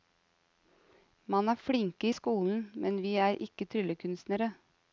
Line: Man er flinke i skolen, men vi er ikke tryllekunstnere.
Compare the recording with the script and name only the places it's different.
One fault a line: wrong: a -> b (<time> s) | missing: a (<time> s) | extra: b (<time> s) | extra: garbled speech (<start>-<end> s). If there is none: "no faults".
no faults